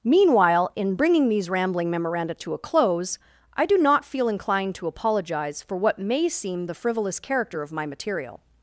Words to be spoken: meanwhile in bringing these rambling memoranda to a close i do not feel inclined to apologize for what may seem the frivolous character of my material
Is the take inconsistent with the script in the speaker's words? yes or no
no